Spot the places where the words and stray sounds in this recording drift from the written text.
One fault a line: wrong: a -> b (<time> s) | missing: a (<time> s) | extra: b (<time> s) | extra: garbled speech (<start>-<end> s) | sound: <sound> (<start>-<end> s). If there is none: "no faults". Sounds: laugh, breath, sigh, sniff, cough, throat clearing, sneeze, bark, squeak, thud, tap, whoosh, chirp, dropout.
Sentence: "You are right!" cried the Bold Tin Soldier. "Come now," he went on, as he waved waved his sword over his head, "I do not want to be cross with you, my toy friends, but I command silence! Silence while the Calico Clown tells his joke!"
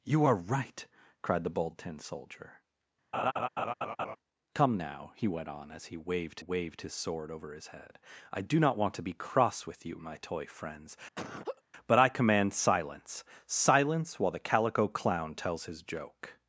sound: laugh (3.1-4.2 s)
sound: laugh (11.1-11.6 s)